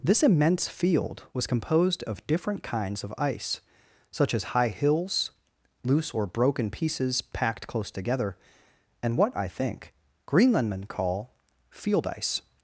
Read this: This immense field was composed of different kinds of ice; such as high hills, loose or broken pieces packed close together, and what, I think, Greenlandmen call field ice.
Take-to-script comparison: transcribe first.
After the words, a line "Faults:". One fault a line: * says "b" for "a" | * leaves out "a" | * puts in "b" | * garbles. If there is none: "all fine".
This immense field was composed of different kinds of ice; such as high hills, loose or broken pieces packed close together, and what, I think, Greenlandmen call field ice.
Faults:
all fine